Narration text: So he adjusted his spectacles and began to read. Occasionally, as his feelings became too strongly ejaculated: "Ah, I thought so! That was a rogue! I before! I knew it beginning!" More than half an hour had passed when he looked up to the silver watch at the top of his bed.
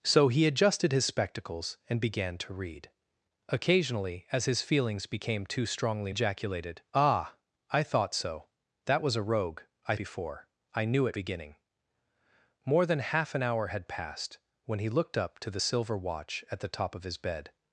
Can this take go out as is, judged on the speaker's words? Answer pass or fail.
pass